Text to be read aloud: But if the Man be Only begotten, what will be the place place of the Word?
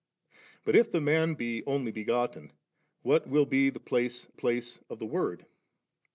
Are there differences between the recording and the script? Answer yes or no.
no